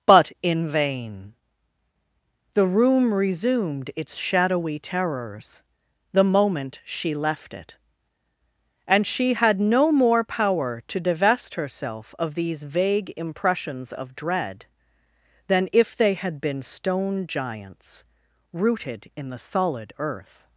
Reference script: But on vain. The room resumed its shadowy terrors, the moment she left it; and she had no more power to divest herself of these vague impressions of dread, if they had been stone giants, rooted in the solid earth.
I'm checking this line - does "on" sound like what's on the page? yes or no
no